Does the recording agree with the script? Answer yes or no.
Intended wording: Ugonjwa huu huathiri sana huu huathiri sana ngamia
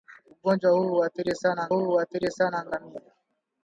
yes